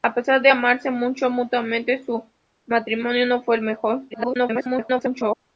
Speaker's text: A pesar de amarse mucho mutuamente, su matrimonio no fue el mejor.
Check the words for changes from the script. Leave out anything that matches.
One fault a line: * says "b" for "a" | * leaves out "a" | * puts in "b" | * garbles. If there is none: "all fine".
* garbles